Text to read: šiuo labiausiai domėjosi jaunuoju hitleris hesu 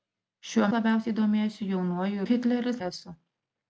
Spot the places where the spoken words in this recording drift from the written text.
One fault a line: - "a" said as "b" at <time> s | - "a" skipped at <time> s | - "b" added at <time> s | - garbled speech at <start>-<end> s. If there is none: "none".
none